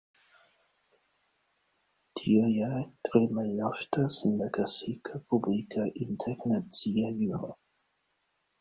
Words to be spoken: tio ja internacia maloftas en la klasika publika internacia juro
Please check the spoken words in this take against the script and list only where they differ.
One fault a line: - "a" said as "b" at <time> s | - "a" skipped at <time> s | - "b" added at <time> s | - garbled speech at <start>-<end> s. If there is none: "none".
- "internacia" said as "tre" at 3.1 s